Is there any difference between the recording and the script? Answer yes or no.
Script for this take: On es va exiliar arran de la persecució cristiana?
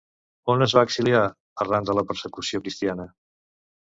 no